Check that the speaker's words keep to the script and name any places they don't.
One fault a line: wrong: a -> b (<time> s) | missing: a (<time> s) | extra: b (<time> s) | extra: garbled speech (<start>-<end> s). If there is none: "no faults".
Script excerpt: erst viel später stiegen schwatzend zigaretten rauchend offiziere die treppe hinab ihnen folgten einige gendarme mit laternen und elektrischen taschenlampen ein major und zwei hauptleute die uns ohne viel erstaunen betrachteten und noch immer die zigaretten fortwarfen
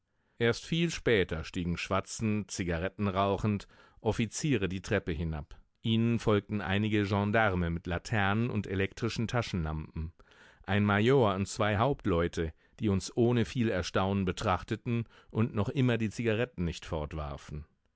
extra: nicht (16.6 s)